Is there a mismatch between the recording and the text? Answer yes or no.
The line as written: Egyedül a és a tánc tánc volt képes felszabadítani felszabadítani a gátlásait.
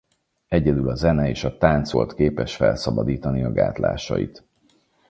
yes